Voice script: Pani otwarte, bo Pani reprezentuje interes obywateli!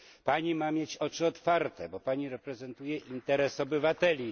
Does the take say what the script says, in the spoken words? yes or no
no